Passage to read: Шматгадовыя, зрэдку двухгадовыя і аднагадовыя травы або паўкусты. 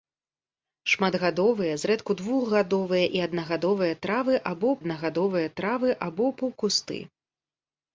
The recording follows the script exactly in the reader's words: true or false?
false